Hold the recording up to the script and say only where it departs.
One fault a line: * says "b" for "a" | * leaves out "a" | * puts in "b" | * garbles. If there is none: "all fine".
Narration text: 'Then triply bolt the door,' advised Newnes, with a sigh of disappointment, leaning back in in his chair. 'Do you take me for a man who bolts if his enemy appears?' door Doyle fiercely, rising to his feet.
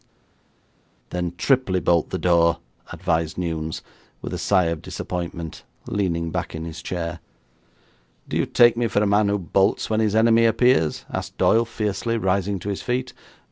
* leaves out "in"
* says "when" for "if"
* says "asked" for "door"